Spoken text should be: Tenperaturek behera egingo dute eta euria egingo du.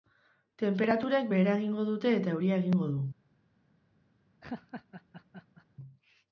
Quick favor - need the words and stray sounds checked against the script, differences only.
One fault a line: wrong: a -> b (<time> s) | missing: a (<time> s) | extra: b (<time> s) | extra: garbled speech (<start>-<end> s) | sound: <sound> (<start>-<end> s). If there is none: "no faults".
sound: laugh (4.4-5.7 s)